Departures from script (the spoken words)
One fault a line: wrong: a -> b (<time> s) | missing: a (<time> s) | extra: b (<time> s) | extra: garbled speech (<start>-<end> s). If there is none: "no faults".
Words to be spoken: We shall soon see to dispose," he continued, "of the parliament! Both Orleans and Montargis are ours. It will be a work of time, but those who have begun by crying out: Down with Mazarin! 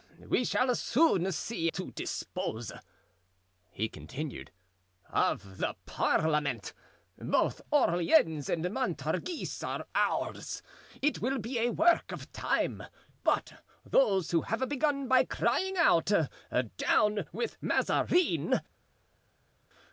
no faults